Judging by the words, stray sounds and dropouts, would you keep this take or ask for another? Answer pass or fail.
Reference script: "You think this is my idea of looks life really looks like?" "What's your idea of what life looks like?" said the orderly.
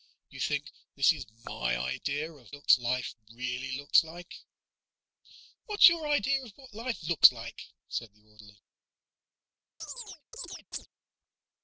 fail